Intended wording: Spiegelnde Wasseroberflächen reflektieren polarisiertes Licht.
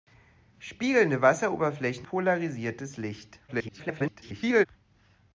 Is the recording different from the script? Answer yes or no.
yes